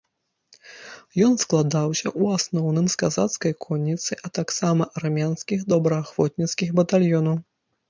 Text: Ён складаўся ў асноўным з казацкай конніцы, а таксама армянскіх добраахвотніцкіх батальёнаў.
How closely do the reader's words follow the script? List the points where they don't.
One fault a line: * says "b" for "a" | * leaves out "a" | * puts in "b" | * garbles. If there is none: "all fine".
all fine